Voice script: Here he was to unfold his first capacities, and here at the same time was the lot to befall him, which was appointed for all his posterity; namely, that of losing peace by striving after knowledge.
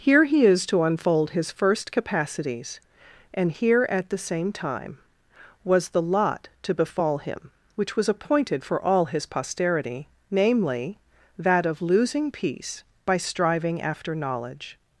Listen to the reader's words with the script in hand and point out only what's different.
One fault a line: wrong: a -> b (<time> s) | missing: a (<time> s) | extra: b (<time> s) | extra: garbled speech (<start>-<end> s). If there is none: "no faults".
wrong: was -> is (0.5 s)